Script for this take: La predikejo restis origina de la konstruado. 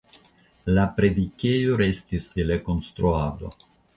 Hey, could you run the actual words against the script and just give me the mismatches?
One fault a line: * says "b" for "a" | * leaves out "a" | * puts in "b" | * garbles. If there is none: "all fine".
* leaves out "origina"